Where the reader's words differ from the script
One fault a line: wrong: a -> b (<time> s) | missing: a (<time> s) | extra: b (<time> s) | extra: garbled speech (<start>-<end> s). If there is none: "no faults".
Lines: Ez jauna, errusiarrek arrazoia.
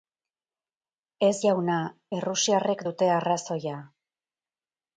extra: dute (2.9 s)